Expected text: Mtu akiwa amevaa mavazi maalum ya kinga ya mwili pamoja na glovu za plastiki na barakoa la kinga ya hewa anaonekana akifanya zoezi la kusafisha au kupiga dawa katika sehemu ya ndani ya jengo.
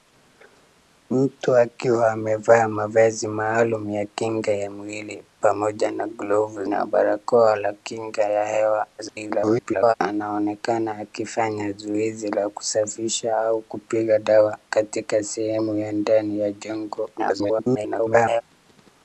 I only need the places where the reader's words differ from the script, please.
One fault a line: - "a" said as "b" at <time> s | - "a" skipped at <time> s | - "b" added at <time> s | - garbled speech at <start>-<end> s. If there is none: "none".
- "za plastiki" skipped at 6.7 s
- garbled speech at 9.0-9.9 s
- garbled speech at 17.2-18.4 s